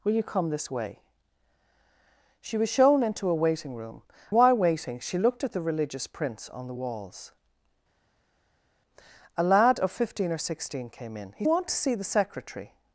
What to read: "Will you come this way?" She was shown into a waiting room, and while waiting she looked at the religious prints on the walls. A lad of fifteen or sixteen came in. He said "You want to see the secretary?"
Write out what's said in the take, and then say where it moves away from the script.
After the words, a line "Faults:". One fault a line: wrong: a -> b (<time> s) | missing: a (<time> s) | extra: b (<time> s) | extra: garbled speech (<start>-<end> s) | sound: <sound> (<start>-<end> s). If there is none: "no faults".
"Will you come this way?" She was shown into a waiting room, while waiting she looked at the religious prints on the walls. A lad of fifteen or sixteen came in. He want to see the secretary?"
Faults:
missing: and (4.0 s)
missing: said You (11.5 s)